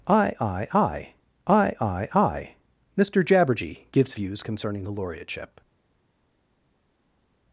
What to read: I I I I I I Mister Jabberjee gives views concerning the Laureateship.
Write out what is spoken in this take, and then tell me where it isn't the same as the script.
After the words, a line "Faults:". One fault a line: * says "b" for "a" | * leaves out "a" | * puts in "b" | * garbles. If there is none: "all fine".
I I I I I I Mister Jabberjee gives views concerning the Laureateship.
Faults:
all fine